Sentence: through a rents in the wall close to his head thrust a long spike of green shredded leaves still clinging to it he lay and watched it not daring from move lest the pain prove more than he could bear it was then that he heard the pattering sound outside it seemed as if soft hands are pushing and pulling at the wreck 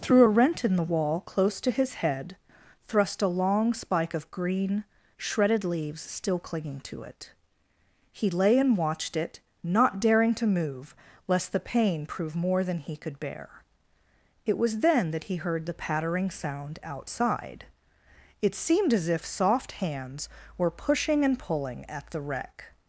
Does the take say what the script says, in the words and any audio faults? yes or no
no